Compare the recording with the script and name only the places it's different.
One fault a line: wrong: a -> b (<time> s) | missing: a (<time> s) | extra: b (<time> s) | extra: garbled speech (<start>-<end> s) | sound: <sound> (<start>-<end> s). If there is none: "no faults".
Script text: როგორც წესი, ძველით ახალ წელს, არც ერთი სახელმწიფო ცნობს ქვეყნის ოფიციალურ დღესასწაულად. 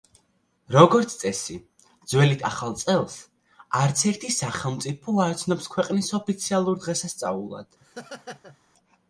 extra: არ (5.3 s)
sound: laugh (7.8-8.6 s)